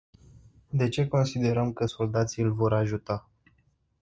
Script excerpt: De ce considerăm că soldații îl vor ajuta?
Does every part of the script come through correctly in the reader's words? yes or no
yes